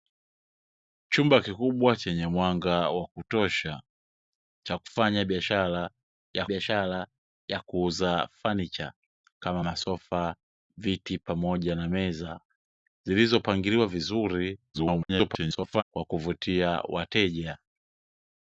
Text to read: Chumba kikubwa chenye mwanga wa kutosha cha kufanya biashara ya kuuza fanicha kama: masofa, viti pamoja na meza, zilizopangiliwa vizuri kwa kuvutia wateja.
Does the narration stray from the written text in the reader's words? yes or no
yes